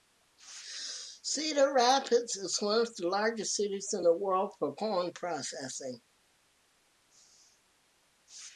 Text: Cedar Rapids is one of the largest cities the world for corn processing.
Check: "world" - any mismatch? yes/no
no